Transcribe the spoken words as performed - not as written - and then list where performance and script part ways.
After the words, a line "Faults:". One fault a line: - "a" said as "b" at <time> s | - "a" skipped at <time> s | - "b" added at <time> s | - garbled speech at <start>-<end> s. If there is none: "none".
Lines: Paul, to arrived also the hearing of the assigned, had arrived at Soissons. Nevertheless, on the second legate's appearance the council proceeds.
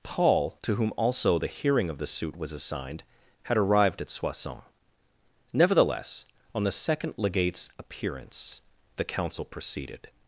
Paul, to whom also the hearing of the suit was assigned, had arrived at Soissons. Nevertheless, on the second legate's appearance the council proceeded.
Faults:
- "arrived" said as "whom" at 0.8 s
- "suit was" added at 2.1 s
- "proceeds" said as "proceeded" at 9.4 s